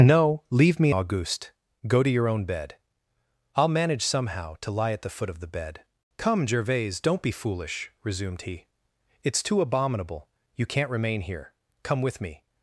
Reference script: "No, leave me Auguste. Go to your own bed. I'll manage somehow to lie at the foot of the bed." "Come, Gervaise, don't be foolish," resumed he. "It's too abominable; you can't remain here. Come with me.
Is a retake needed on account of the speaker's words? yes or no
no